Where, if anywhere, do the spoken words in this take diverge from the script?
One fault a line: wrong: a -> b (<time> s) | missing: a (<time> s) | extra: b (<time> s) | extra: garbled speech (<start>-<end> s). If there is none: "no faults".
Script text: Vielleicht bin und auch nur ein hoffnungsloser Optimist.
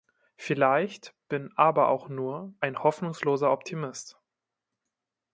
wrong: und -> aber (1.6 s)